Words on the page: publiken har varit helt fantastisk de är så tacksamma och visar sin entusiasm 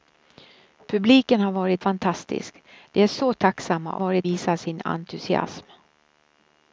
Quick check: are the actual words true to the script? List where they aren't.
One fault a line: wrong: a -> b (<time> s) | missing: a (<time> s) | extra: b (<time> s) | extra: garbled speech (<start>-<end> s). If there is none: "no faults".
missing: helt (1.8 s)
wrong: och -> varit (4.0 s)